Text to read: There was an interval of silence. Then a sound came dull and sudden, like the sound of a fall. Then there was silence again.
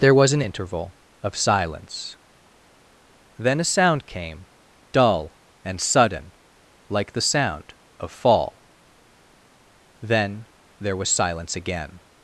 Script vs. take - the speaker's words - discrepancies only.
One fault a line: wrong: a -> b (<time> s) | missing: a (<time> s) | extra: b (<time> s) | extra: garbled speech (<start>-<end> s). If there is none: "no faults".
missing: a (8.1 s)